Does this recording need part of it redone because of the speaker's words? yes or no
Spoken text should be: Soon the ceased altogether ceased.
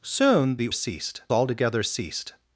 no